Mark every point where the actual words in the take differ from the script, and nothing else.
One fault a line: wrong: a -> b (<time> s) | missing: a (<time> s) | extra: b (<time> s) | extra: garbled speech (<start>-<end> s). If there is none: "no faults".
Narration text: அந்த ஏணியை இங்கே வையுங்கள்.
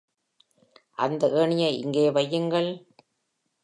no faults